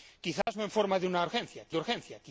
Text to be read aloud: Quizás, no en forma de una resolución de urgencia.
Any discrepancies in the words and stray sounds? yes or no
yes